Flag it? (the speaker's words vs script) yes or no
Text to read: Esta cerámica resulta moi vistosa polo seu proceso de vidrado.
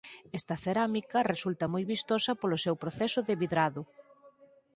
no